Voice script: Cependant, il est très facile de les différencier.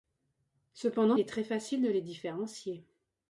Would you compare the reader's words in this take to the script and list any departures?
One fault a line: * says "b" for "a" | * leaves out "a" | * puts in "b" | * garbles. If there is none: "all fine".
* leaves out "il"